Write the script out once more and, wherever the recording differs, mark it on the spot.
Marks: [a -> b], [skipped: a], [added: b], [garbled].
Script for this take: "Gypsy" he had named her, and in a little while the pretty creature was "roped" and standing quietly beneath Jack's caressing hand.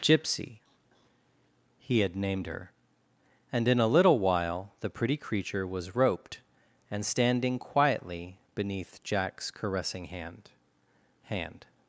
"Gypsy" he had named her, and in a little while the pretty creature was "roped" and standing quietly beneath Jack's caressing hand. [added: hand]